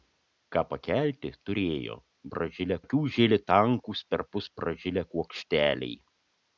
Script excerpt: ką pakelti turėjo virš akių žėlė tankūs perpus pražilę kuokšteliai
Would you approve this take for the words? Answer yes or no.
no